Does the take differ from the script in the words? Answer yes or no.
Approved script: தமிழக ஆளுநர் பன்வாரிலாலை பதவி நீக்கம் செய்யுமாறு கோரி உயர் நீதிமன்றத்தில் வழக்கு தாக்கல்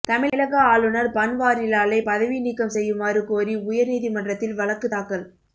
no